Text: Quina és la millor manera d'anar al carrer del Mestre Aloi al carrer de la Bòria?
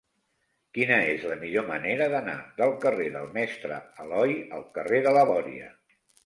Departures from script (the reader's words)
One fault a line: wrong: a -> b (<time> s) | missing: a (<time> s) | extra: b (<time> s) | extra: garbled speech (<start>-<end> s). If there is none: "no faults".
wrong: al -> del (2.6 s)